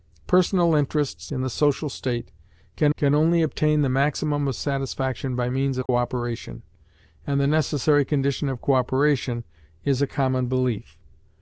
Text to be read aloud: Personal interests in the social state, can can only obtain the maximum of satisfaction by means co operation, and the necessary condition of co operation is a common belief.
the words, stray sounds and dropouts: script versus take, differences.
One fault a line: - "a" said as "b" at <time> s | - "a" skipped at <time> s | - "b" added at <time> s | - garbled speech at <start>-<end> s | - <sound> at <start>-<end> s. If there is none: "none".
- dropout at 5.9-5.9 s